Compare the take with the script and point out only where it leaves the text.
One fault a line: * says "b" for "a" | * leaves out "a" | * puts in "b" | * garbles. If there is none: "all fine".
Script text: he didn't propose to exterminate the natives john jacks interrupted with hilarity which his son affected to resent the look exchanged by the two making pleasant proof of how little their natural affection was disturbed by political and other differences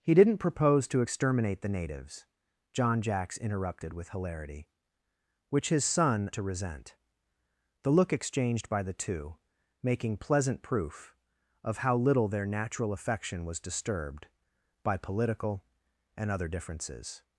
* leaves out "affected"